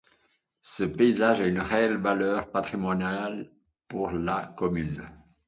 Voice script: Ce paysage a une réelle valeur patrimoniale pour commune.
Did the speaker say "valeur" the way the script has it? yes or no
yes